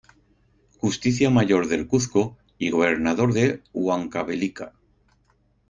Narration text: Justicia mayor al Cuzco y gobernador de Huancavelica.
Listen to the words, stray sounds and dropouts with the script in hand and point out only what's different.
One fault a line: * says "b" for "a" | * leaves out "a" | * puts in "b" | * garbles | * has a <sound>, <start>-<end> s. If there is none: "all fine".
* says "del" for "al"